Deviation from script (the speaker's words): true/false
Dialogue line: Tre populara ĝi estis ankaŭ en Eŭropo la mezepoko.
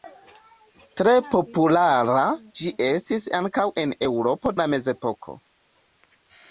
false